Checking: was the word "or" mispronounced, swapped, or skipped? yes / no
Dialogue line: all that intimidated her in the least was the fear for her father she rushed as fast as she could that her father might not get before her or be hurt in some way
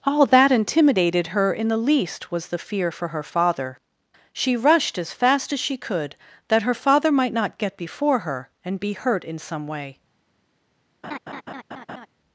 yes